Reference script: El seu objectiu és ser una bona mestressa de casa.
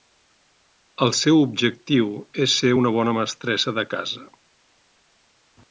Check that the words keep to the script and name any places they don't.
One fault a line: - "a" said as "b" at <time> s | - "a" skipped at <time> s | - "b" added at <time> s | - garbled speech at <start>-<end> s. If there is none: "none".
none